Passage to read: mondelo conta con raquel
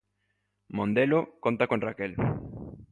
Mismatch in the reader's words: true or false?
false